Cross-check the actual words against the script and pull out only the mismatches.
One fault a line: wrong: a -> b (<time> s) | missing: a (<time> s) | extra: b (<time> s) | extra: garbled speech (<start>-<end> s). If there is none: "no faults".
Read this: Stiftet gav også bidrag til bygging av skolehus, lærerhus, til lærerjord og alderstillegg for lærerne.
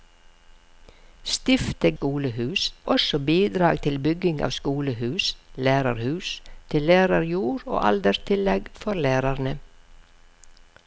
wrong: gav -> skolehus (1.9 s)